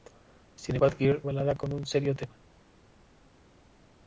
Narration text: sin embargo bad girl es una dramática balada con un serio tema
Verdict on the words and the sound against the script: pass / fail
fail